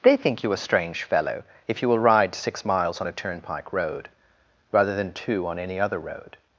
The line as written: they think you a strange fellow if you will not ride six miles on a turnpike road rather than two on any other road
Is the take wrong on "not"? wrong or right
wrong